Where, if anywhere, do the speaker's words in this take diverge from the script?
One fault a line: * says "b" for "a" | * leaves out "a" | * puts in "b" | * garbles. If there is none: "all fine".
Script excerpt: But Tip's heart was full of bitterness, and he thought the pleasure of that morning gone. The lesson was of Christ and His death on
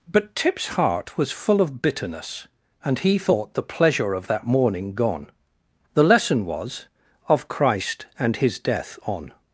all fine